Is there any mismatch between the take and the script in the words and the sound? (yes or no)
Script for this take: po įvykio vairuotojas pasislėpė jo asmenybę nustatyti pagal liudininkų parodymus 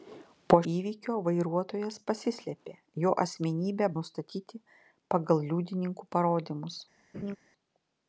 yes